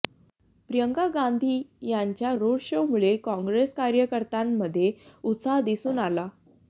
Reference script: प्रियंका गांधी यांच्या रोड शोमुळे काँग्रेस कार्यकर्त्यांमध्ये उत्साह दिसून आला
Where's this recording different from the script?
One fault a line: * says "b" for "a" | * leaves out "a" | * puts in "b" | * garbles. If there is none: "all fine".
all fine